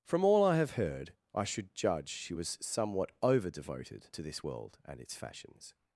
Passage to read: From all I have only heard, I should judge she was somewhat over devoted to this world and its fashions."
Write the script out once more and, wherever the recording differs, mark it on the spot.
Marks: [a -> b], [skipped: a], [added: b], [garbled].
From all I have [skipped: only] heard, I should judge she was somewhat over devoted to this world and its fashions."